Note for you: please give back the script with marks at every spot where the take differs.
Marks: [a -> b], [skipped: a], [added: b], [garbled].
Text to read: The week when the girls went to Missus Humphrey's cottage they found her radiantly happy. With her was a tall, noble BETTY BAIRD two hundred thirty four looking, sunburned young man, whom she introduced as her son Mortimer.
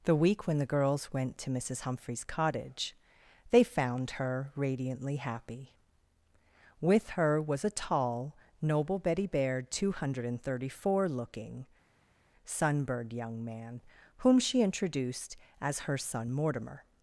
The week when the girls went to Missus Humphrey's cottage they found her radiantly happy. With her was a tall, noble BETTY BAIRD two hundred thirty four looking, sunburned young man, whom she introduced as her son Mortimer.